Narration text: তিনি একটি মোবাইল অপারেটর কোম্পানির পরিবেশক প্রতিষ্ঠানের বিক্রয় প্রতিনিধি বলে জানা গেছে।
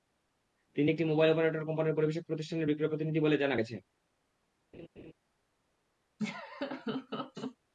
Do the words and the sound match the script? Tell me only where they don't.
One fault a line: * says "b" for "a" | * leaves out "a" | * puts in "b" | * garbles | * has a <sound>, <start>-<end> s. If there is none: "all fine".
* has a laugh, 4.7-5.1 s
* has a laugh, 6.2-7.6 s